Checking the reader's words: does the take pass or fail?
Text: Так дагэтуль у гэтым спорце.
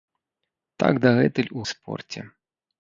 fail